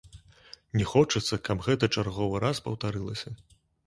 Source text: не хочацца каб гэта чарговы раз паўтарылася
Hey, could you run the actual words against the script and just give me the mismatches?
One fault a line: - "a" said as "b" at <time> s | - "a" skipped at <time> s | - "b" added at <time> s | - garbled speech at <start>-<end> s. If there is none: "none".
none